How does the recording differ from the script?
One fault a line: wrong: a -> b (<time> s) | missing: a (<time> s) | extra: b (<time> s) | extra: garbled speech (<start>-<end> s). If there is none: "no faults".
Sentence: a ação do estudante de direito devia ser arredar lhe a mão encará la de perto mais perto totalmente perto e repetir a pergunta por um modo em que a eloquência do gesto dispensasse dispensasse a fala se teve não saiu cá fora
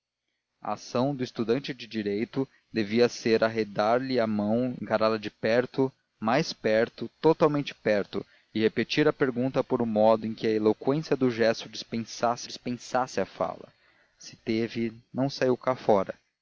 no faults